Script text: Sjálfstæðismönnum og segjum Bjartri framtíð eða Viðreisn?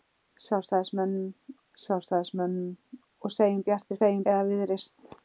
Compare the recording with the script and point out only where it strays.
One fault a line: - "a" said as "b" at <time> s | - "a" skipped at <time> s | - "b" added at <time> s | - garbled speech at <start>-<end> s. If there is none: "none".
- "sjálfstæðismönnum" added at 1.8 s
- "framtíð" said as "segjum" at 4.0 s